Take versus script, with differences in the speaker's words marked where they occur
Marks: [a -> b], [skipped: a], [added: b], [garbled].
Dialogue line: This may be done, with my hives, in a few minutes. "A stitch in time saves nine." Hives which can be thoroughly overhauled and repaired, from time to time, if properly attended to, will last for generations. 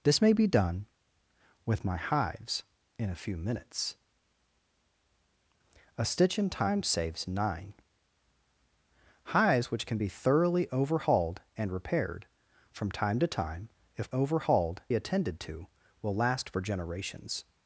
This may be done, with my hives, in a few minutes. "A stitch in time saves nine." Hives which can be thoroughly overhauled and repaired, from time to time, if [properly -> overhauled] attended to, will last for generations.